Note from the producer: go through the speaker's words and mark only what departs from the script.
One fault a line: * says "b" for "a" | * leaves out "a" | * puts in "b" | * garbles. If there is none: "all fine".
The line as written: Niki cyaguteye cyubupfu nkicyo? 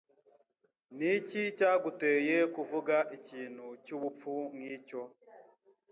* puts in "kuvuga ikintu"